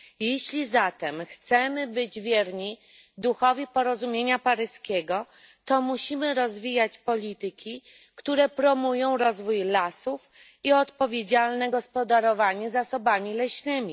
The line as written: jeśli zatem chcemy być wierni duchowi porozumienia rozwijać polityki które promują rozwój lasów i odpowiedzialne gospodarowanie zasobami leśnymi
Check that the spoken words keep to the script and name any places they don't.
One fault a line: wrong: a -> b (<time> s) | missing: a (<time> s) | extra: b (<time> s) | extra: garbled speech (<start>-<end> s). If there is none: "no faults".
extra: paryskiego to musimy (4.4 s)